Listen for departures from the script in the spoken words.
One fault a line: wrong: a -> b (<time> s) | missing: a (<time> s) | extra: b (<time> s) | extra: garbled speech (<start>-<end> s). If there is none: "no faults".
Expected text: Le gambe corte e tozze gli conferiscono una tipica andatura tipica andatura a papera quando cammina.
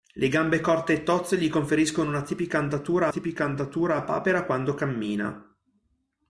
no faults